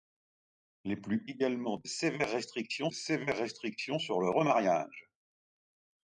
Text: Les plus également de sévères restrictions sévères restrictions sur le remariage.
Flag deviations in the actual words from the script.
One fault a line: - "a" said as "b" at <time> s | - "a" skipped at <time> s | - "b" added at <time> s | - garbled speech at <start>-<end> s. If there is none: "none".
none